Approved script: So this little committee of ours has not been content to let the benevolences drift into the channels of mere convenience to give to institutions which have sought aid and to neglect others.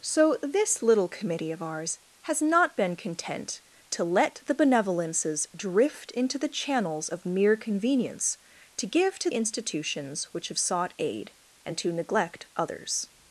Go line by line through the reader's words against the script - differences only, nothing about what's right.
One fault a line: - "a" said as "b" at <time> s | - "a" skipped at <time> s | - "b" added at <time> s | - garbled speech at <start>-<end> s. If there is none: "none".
none